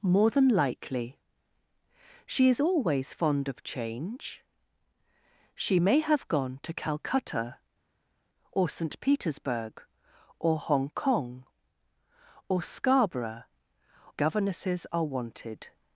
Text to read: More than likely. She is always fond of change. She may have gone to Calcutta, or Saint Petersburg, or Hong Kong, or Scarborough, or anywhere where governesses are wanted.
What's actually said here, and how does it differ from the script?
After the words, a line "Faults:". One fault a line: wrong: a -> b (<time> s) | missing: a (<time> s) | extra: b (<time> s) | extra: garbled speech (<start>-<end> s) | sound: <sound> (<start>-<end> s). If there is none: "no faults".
More than likely. She is always fond of change. She may have gone to Calcutta, or Saint Petersburg, or Hong Kong, or Scarborough, governesses are wanted.
Faults:
missing: or anywhere where (13.4 s)